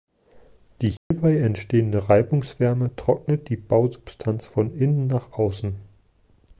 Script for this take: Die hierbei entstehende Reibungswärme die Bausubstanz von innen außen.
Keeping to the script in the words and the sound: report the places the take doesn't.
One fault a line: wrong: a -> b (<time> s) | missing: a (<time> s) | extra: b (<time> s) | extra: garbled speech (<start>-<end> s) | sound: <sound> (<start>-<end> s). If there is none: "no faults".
sound: dropout (1.0-1.1 s)
extra: trocknet (2.9 s)
extra: nach (5.1 s)